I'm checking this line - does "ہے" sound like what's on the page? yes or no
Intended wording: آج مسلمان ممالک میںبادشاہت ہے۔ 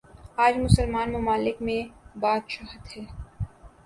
yes